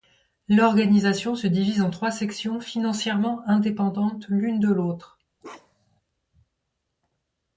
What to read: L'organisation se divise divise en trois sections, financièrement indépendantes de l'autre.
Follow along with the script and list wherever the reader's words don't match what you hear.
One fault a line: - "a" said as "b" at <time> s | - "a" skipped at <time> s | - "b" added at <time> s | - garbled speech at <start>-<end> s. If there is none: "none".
- "divise" skipped at 1.8 s
- "l'une" added at 4.3 s